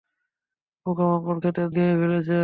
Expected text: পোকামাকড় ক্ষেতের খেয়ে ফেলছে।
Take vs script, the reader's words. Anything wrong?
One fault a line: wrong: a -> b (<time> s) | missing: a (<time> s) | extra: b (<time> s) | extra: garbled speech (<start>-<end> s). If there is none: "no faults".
no faults